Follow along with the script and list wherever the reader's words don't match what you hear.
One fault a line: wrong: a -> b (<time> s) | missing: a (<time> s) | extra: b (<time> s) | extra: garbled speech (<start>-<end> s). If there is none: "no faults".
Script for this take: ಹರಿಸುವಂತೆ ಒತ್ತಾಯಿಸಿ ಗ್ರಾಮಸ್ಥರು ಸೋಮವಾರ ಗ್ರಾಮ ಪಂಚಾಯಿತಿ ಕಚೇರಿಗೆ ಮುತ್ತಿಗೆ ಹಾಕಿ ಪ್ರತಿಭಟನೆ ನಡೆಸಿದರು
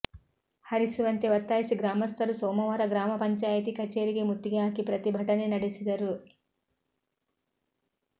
no faults